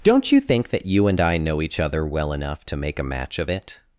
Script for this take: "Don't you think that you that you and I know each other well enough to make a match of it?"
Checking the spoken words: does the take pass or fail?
fail